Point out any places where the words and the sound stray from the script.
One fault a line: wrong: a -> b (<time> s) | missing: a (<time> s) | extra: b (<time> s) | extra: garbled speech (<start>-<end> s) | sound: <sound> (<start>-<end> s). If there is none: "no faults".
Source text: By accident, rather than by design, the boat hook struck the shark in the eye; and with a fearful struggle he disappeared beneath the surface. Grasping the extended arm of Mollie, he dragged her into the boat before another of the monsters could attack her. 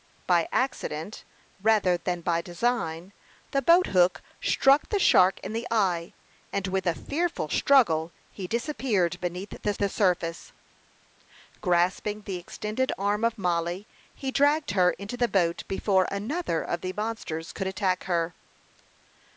extra: the (9.8 s)